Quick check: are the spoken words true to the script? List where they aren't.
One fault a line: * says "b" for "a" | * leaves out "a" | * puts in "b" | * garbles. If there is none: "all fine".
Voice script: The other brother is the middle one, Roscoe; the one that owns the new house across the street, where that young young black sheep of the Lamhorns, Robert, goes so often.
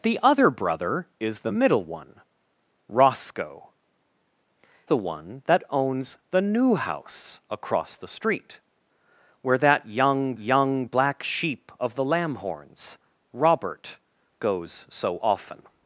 all fine